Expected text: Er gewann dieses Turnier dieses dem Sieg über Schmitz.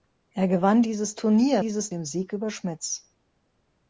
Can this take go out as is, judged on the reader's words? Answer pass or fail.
pass